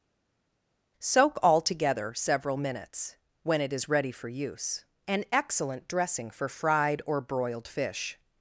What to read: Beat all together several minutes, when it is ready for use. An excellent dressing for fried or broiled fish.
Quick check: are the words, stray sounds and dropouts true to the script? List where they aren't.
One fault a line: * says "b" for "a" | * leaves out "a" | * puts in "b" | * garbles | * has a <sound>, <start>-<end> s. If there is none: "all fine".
* says "Soak" for "Beat"